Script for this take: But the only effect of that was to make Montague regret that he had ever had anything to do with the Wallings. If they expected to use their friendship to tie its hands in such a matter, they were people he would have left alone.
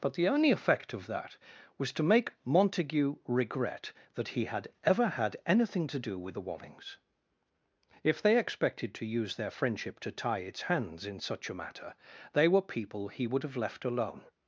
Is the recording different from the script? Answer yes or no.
no